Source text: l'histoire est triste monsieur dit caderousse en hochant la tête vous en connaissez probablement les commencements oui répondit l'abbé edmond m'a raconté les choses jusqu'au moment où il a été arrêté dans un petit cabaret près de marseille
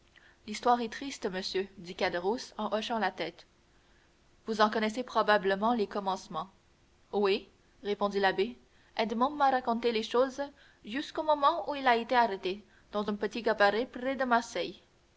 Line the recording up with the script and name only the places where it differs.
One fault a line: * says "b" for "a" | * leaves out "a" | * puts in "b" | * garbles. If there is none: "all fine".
all fine